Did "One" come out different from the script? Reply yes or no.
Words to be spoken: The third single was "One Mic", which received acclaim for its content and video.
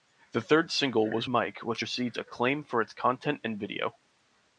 yes